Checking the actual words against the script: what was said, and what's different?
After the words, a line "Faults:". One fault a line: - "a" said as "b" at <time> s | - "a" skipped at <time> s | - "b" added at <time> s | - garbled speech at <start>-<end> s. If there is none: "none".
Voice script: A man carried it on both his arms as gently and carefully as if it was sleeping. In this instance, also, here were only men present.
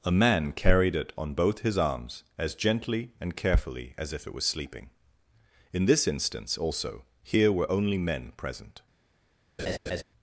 A man carried it on both his arms as gently and carefully as if it was sleeping. In this instance, also, here were only men present.
Faults:
none